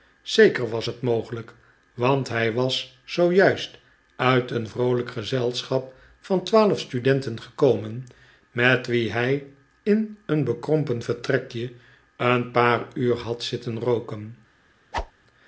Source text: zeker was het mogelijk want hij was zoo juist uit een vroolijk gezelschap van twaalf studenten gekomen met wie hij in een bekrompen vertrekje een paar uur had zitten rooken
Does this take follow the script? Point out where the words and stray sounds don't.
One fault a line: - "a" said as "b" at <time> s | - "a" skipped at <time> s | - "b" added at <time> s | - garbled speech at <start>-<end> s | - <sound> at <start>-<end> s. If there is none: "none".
- whoosh at 14.9-15.1 s